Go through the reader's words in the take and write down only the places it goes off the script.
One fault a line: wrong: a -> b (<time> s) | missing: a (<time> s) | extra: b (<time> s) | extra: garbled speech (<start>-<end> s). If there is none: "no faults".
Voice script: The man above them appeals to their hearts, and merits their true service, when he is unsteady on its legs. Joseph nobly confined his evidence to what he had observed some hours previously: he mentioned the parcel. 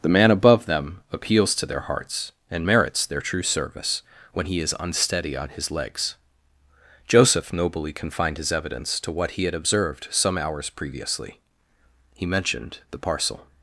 wrong: its -> his (5.5 s)